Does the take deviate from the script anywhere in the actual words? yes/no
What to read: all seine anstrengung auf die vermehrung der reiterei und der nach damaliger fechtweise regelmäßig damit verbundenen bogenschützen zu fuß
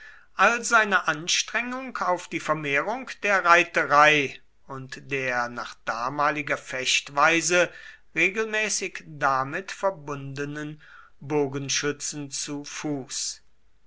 no